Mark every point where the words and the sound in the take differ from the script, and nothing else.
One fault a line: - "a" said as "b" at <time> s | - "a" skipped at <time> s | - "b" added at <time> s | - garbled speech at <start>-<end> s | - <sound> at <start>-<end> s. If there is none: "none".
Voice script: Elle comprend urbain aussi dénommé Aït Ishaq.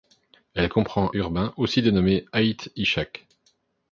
none